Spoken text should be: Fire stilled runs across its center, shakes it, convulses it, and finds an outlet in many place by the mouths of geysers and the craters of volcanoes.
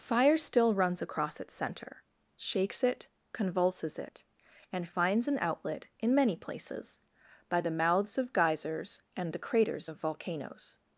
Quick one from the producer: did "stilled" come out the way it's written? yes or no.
no